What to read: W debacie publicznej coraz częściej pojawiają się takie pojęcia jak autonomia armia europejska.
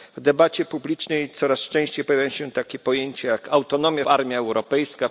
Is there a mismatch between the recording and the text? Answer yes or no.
no